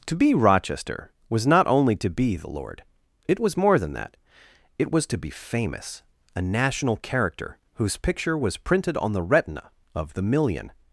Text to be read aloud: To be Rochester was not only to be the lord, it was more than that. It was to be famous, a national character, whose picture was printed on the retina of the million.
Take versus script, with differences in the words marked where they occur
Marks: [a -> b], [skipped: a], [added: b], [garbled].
To be Rochester was not only to be the lord, it was more than that. It was to be famous, a national character, whose picture was printed on the retina of the million.